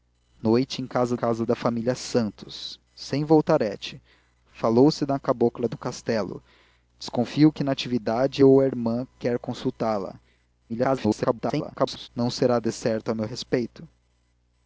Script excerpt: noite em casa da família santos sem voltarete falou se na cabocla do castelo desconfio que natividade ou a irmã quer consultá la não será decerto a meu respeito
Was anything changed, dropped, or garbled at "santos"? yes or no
no